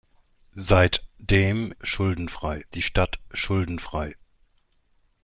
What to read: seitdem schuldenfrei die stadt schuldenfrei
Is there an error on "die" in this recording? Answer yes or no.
no